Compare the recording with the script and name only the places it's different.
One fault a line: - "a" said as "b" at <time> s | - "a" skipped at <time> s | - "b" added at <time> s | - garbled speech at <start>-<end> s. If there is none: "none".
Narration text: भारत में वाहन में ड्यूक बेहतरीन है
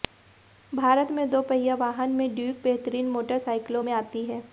- "दोपहिया" added at 1.3 s
- "मोटरसाइकिलों में आती" added at 3.1 s